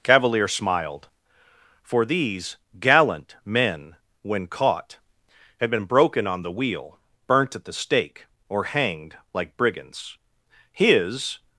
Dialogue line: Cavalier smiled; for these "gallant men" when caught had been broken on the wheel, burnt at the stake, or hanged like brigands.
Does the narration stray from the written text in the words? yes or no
yes